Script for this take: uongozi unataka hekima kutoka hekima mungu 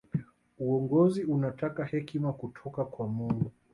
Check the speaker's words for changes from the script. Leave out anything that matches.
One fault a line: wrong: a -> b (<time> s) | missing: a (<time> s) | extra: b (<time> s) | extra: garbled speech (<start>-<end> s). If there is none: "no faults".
wrong: hekima -> kwa (2.8 s)